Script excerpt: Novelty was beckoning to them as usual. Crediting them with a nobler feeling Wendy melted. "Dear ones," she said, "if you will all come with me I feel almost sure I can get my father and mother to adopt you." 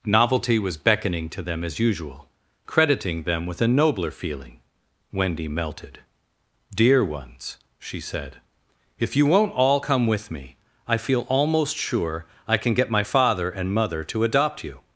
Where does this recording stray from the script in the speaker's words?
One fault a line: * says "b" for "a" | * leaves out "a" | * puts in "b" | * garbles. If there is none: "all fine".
* says "won't" for "will"